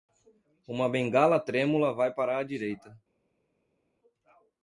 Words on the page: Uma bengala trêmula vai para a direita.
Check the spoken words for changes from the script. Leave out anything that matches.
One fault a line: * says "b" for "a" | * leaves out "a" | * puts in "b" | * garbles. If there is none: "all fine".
all fine